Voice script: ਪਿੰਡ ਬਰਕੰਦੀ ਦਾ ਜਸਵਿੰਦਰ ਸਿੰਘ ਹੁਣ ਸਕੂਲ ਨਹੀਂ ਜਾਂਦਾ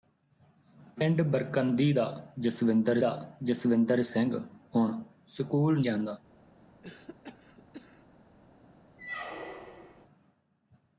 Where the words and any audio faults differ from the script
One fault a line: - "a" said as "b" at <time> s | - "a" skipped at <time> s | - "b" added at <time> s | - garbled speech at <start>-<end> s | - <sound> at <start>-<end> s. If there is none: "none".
- "ਦਾ ਜਸਵਿੰਦਰ" added at 3.0 s
- "ਨਹੀਂ" skipped at 5.8 s
- cough at 6.8-8.1 s
- squeak at 9.0-10.1 s